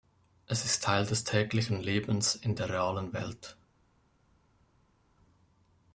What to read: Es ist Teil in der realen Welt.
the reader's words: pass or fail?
fail